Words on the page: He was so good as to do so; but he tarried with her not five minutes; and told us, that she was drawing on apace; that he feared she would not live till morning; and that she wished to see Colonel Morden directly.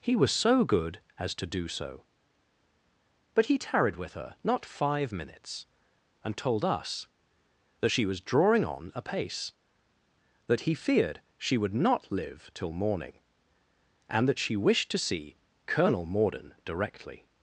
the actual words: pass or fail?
pass